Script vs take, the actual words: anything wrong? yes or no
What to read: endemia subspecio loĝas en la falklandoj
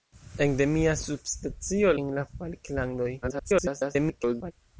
yes